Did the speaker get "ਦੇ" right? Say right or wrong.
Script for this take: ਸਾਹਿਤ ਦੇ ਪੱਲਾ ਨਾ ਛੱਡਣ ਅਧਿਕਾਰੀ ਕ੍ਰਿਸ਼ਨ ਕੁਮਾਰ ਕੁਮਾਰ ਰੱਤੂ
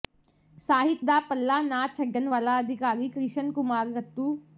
wrong